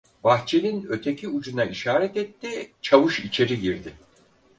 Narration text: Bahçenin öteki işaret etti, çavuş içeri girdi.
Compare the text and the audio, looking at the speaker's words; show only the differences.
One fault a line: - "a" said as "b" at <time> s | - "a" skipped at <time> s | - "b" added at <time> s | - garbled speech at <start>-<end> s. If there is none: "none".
- "ucuna" added at 1.3 s